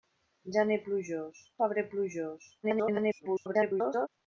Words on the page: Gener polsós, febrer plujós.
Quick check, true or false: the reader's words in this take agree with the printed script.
false